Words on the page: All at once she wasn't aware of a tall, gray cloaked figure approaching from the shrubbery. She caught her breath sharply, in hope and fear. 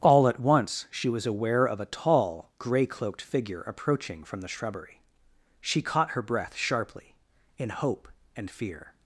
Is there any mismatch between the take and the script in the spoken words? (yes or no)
yes